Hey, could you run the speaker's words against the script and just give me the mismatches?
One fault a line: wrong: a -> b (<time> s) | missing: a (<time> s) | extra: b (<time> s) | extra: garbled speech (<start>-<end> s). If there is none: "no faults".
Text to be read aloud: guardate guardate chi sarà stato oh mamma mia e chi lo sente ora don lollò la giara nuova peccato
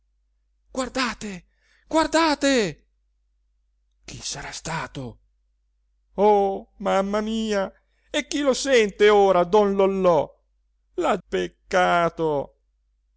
missing: giara nuova (11.2 s)